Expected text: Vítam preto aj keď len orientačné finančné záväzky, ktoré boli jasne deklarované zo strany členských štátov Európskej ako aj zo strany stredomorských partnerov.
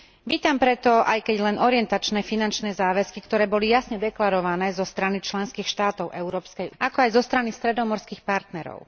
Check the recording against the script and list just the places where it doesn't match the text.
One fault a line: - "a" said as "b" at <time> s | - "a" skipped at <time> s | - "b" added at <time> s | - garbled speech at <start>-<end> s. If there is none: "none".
none